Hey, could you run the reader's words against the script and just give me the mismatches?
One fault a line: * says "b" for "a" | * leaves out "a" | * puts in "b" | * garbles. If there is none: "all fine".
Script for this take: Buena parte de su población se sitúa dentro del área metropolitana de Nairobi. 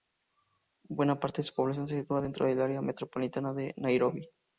all fine